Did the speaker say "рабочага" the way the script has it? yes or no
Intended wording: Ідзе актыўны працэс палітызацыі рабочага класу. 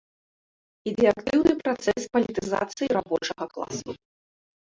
yes